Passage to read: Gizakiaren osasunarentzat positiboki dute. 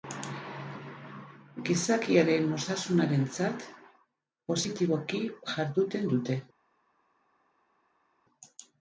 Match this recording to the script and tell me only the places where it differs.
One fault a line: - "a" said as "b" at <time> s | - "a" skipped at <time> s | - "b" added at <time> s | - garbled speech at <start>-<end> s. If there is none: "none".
- "jarduten" added at 5.5 s